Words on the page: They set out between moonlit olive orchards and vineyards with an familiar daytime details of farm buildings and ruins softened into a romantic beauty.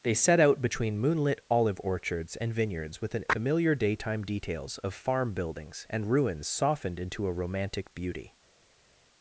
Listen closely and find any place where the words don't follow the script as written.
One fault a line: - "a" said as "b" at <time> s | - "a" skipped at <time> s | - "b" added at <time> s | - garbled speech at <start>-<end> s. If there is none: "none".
none